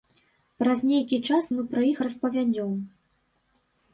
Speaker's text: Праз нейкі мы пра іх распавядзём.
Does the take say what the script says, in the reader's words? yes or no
no